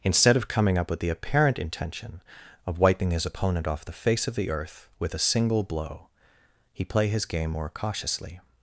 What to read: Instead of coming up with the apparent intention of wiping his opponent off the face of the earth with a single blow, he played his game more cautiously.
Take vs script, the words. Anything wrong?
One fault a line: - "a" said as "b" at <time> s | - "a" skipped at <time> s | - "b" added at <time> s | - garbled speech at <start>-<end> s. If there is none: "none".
- "played" said as "play" at 6.8 s